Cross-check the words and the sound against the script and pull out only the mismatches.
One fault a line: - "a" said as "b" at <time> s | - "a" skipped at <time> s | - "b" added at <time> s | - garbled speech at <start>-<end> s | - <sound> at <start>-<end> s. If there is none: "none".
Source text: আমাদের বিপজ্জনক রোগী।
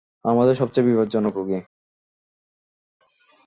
- "সবচেয়ে" added at 0.6 s